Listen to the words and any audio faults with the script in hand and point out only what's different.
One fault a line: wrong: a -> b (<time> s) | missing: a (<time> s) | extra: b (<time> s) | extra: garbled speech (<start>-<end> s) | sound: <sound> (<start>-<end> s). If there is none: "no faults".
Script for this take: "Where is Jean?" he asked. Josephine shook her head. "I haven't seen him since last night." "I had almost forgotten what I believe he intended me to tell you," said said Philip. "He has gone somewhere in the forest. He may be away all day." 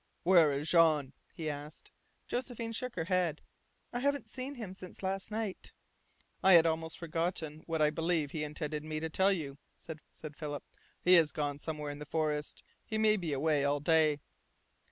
no faults